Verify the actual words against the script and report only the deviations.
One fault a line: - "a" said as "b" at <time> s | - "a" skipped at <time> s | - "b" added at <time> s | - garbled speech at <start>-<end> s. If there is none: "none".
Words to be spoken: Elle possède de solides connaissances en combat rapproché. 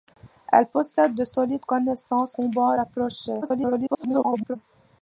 - "en" skipped at 2.4 s
- garbled speech at 3.4-4.6 s